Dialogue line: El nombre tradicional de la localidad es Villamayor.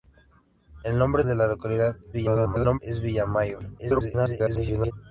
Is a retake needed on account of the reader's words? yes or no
yes